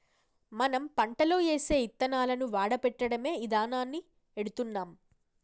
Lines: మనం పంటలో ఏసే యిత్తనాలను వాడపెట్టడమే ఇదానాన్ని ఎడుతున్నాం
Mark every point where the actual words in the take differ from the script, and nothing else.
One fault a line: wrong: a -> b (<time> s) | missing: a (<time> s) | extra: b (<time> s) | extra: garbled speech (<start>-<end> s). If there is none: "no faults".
no faults